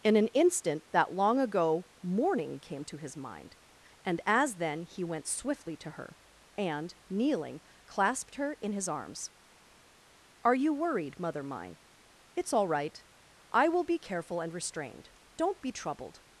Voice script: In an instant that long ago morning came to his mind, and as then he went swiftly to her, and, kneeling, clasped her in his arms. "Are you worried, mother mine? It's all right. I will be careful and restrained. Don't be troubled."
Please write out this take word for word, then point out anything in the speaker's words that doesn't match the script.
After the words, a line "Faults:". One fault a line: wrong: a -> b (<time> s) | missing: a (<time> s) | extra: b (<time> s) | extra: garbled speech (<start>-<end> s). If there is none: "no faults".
In an instant that long ago morning came to his mind, and as then he went swiftly to her, and, kneeling, clasped her in his arms. "Are you worried, mother mine? It's all right. I will be careful and restrained. Don't be troubled."
Faults:
no faults